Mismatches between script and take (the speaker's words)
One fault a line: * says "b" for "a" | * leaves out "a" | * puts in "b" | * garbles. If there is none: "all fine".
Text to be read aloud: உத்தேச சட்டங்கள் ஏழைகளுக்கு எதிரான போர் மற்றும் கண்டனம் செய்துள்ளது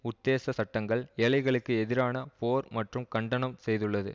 all fine